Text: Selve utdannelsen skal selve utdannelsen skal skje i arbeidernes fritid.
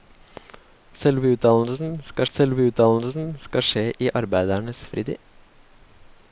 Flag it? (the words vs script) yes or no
no